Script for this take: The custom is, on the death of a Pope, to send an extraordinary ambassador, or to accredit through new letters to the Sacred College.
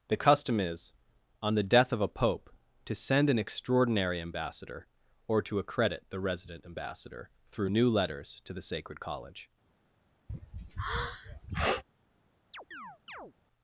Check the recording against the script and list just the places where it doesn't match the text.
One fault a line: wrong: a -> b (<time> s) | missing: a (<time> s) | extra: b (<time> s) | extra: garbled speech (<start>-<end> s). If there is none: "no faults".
extra: the resident ambassador (6.1 s)